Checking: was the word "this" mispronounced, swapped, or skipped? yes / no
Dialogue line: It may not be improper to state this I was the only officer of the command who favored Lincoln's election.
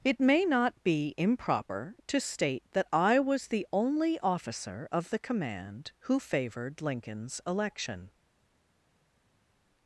yes